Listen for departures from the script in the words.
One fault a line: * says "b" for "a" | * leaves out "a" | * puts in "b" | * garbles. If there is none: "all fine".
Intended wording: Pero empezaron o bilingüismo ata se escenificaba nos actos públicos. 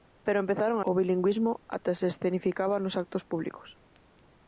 all fine